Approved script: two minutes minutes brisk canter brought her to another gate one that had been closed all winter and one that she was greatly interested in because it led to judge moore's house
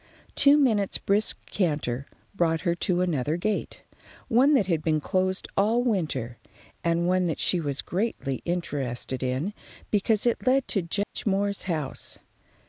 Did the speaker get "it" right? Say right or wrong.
right